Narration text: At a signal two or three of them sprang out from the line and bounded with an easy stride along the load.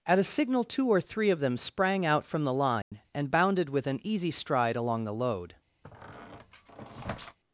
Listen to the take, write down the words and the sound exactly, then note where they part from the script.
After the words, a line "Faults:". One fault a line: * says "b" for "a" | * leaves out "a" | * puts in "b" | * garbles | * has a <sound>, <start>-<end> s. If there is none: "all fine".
At a signal two or three of them sprang out from the line and bounded with an easy stride along the load.
Faults:
* has a dropout, 2.8-2.9 s
* has a squeak, 5.8-7.4 s